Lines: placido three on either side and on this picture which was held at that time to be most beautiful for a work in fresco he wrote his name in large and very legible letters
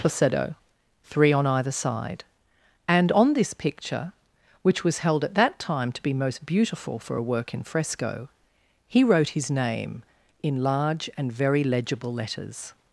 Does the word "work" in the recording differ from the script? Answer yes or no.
no